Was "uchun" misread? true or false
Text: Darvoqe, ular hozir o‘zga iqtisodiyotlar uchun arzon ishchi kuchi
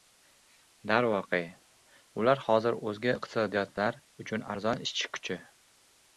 false